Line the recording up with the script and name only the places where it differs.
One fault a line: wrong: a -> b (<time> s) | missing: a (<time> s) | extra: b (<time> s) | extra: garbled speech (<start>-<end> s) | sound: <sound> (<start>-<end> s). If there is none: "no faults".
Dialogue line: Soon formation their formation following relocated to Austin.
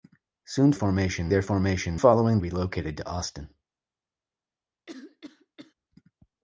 sound: cough (4.9-5.7 s)